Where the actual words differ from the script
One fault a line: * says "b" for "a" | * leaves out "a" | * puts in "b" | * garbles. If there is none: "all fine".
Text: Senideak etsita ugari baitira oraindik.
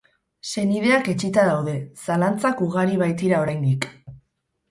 * puts in "daude zalantzak"